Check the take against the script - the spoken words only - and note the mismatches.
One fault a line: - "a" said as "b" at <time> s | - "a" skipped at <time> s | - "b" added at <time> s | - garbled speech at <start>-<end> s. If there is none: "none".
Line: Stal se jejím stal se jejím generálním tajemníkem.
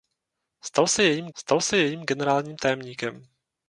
none